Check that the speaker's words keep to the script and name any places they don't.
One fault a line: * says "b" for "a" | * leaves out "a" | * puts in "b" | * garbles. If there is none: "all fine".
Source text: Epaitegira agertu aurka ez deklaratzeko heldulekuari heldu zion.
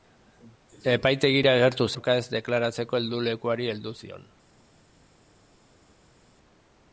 all fine